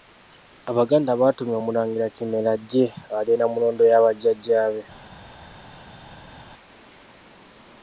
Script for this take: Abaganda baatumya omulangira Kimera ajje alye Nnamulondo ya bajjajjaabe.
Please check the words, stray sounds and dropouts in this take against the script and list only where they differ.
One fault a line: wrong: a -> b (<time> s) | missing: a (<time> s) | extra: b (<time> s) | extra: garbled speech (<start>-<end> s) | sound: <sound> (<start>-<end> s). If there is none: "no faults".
no faults